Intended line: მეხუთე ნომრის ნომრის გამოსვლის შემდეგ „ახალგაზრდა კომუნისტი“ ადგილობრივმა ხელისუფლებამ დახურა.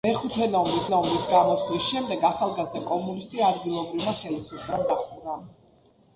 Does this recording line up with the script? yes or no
yes